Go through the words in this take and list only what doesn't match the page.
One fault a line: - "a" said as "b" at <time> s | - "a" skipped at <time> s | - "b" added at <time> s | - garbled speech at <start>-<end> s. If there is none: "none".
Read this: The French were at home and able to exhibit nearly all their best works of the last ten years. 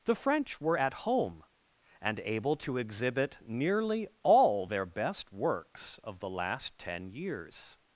none